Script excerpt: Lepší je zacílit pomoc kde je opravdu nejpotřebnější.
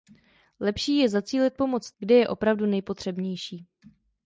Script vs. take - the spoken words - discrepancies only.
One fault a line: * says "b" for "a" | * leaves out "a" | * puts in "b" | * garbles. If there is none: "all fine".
all fine